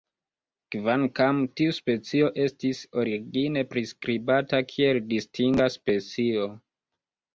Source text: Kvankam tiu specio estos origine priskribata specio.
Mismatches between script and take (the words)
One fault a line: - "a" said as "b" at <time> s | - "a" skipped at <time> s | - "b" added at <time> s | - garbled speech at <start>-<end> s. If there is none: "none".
- "estos" said as "estis" at 2.5 s
- "kiel distinga" added at 4.7 s